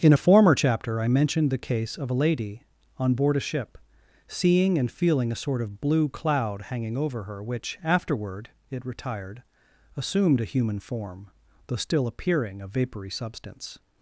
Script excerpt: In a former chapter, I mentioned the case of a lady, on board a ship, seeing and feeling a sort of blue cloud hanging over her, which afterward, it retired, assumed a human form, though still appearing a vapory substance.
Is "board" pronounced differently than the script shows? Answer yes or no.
no